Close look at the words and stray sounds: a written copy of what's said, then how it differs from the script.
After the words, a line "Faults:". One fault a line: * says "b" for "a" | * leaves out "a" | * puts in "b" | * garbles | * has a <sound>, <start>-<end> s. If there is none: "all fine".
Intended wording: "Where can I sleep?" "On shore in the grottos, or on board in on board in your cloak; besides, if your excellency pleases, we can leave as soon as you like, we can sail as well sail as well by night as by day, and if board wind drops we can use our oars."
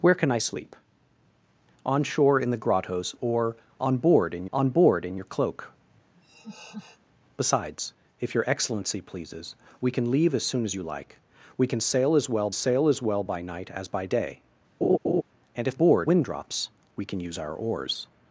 "Where can I sleep?" "On shore in the grottos, or on board in on board in your cloak; besides, if your excellency pleases, we can leave as soon as you like, we can sail as well sail as well by night as by day, and if board wind drops we can use our oars."
Faults:
* has a laugh, 6.1-7.0 s
* has a laugh, 14.8-15.2 s